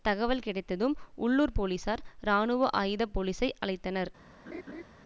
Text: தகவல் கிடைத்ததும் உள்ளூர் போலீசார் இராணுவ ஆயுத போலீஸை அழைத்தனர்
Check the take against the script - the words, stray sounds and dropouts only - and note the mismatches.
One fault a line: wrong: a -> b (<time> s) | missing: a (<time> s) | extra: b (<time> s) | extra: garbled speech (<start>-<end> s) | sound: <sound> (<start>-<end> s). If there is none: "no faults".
sound: laugh (4.5-4.8 s)